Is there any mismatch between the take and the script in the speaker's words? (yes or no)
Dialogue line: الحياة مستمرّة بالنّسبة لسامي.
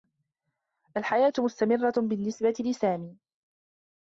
no